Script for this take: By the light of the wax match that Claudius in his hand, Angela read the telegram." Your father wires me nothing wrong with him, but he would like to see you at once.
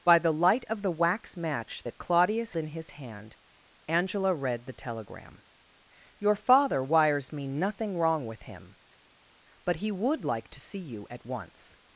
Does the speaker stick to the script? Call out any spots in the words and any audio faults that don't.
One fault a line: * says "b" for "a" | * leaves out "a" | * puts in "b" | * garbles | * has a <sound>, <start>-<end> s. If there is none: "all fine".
all fine